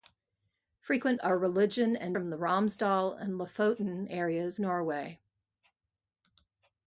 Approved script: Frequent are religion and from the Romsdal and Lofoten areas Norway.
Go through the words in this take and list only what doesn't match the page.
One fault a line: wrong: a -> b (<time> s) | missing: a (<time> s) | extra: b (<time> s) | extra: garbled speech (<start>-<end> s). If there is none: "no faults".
no faults